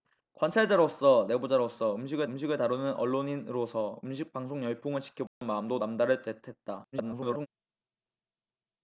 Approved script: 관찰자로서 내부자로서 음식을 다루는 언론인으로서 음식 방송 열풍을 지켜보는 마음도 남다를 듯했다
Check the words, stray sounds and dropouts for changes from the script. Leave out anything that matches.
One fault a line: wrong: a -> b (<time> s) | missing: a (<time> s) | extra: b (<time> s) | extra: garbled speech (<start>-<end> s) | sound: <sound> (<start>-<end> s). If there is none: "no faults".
extra: 음식을 (2.2 s)
sound: dropout (5.3-5.4 s)
extra: garbled speech (6.9-7.5 s)